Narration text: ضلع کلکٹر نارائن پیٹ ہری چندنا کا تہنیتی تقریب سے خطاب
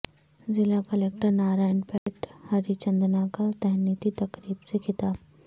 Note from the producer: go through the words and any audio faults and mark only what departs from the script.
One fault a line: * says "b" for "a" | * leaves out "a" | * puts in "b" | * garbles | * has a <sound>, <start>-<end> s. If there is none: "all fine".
* has a dropout, 2.0-2.1 s